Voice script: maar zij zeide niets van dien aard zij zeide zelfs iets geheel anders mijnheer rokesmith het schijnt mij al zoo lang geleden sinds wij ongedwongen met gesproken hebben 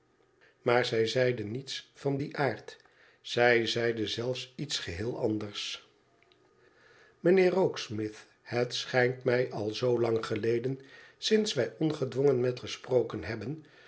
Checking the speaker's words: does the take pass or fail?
pass